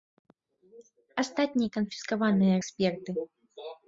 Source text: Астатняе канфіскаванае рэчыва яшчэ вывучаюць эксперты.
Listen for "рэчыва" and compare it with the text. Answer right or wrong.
wrong